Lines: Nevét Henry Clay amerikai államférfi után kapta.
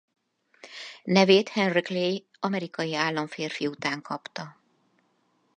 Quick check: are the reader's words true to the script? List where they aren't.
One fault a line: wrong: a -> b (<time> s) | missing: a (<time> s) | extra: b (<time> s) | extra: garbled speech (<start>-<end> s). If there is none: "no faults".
no faults